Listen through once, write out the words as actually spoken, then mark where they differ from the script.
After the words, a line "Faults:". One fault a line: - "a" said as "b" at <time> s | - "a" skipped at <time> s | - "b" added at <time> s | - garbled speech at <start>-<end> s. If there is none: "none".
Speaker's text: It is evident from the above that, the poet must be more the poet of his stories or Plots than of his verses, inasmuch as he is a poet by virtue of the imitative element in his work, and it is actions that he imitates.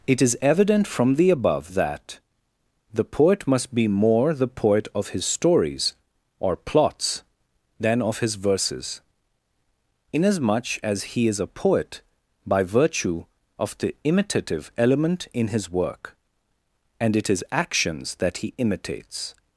It is evident from the above that, the poet must be more the poet of his stories or Plots than of his verses, inasmuch as he is a poet by virtue of the imitative element in his work, and it is actions that he imitates.
Faults:
none